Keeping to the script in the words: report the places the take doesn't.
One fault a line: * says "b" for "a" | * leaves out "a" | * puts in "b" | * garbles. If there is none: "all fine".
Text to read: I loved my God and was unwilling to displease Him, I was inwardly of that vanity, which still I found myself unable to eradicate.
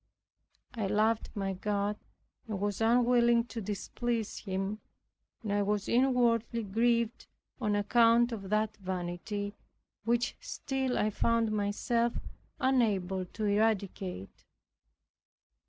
* puts in "and"
* puts in "grieved on account"